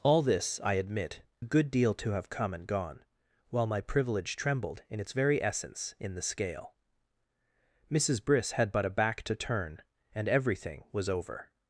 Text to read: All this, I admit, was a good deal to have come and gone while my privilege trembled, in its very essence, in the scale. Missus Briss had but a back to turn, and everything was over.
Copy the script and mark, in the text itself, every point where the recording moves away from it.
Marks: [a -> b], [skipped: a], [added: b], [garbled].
All this, I admit, [skipped: was] a good deal to have come and gone while my privilege trembled, in its very essence, in the scale. Missus Briss had but a back to turn, and everything was over.